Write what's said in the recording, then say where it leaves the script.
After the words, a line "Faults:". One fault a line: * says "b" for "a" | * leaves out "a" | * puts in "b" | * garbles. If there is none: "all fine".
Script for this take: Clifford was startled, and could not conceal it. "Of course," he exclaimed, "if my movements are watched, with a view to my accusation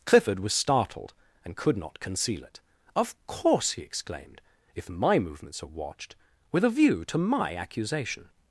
Clifford was startled, and could not conceal it. "Of course," he exclaimed, "if my movements are watched, with a view to my accusation
Faults:
all fine